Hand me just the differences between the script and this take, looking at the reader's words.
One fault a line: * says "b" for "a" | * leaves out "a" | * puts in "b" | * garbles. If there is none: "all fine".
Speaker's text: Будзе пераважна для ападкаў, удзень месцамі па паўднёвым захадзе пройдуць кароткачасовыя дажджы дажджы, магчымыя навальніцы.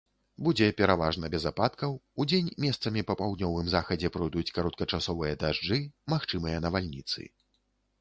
* says "без" for "для"
* leaves out "дажджы"